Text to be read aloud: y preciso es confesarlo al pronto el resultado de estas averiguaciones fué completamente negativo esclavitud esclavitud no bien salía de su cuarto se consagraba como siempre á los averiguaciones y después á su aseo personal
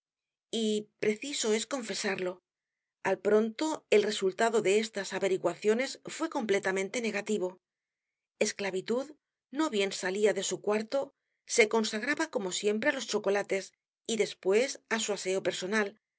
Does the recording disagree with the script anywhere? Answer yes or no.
yes